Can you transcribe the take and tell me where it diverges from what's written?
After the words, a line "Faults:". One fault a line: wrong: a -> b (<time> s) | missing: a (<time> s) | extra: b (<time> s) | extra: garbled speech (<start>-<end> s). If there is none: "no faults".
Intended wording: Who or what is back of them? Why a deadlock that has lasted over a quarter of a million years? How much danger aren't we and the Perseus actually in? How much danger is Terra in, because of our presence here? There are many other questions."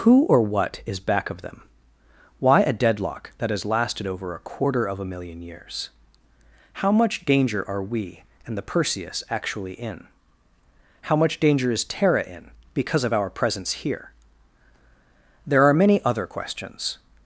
Who or what is back of them? Why a deadlock that has lasted over a quarter of a million years? How much danger are we and the Perseus actually in? How much danger is Terra in, because of our presence here? There are many other questions."
Faults:
wrong: aren't -> are (7.7 s)